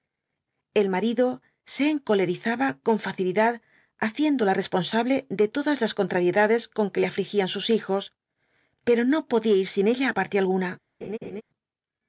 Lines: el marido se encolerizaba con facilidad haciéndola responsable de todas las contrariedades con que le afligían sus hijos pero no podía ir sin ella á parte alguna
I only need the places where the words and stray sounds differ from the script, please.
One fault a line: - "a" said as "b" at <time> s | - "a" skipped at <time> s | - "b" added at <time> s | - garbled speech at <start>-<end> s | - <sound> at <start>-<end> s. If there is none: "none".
- laugh at 11.0-11.4 s